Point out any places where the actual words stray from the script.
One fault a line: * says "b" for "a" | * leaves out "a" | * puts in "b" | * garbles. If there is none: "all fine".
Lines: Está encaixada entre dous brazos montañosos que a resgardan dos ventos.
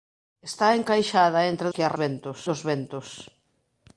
* leaves out "dous brazos montañosos"
* says "ventos" for "resgardan"